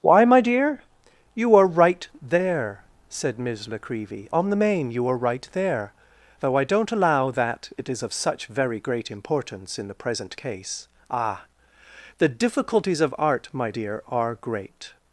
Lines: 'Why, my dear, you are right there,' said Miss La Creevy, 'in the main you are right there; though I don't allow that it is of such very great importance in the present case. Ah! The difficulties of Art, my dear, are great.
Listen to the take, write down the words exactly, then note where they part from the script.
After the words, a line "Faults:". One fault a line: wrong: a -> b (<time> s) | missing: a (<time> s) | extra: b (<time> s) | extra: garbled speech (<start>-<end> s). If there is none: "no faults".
'Why, my dear, you are right there,' said Miss La Creevy, 'on the main you are right there; though I don't allow that it is of such very great importance in the present case. Ah! The difficulties of Art, my dear, are great.
Faults:
wrong: in -> on (4.3 s)